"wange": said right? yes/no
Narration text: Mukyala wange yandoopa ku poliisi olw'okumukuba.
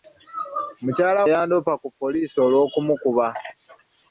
no